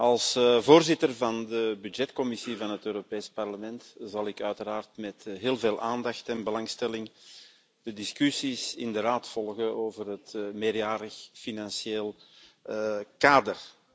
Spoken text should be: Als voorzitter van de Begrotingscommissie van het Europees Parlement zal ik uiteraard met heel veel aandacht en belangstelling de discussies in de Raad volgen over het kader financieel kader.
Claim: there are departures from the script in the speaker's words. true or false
true